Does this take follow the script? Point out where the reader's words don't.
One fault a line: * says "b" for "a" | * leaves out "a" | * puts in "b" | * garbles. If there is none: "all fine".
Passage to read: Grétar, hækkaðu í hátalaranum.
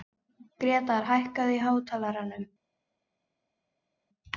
all fine